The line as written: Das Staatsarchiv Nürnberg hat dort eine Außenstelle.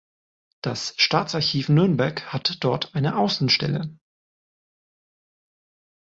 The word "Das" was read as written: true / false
true